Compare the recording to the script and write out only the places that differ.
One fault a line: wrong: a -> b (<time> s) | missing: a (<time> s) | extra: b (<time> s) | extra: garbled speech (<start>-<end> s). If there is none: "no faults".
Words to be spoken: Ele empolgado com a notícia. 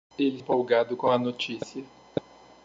no faults